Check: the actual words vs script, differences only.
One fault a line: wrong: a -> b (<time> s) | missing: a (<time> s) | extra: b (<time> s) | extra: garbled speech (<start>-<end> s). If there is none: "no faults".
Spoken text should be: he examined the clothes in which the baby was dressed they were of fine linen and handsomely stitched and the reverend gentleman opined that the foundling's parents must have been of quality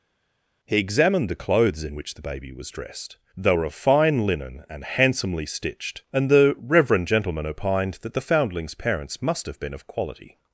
no faults